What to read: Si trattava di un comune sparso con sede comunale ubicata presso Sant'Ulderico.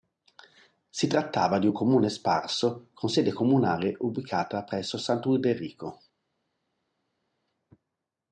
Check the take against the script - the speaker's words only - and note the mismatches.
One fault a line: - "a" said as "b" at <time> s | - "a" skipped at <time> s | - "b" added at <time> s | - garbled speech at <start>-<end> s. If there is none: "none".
none